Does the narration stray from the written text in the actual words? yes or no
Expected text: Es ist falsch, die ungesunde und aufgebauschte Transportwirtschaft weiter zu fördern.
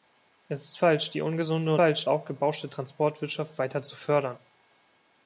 yes